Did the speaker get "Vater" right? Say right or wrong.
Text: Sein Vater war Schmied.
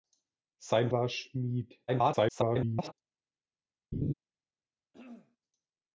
wrong